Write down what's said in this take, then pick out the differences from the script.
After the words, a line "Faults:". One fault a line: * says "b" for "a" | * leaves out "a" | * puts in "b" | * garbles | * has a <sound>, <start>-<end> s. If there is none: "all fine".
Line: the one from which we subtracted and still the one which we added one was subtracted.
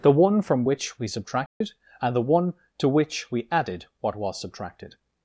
the one from which we subtracted and the one to which we added what was subtracted.
Faults:
* has a dropout, 1.5-1.6 s
* leaves out "still"
* puts in "to"
* says "what" for "one"